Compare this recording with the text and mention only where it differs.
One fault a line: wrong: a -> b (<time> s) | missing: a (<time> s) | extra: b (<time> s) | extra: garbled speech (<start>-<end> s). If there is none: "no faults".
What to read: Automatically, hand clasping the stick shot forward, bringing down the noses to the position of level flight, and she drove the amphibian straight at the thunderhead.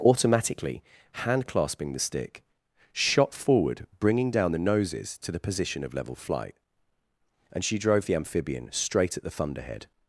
no faults